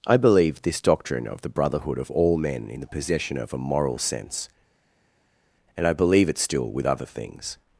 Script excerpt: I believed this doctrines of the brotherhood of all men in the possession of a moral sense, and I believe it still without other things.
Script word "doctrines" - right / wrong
wrong